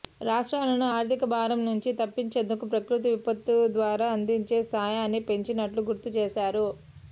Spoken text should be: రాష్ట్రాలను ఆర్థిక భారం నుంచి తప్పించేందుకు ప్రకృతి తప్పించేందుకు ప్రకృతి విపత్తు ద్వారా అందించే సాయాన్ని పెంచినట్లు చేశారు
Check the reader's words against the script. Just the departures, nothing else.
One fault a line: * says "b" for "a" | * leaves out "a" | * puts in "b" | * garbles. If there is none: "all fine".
* leaves out "తప్పించేందుకు ప్రకృతి"
* puts in "గుర్తు"